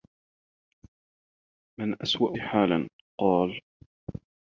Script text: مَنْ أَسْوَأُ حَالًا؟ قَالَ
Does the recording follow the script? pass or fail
pass